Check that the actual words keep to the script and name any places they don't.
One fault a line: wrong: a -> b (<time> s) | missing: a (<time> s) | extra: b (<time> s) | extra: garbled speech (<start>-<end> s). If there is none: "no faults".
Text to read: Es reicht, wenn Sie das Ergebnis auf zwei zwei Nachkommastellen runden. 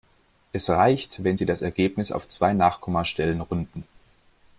missing: zwei (2.5 s)